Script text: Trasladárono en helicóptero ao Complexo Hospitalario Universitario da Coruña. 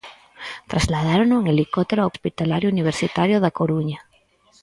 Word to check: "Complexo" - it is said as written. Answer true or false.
false